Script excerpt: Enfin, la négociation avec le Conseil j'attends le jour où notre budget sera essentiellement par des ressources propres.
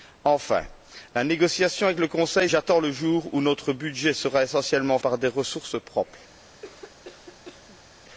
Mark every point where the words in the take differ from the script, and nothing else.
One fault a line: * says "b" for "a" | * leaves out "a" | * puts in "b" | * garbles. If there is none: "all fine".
all fine